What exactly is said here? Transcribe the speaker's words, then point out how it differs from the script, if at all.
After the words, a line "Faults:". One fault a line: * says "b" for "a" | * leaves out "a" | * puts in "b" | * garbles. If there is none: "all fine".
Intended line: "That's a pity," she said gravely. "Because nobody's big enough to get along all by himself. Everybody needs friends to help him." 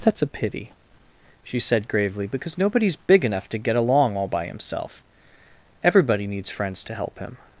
"That's a pity," she said gravely. "Because nobody's big enough to get along all by himself. Everybody needs friends to help him."
Faults:
all fine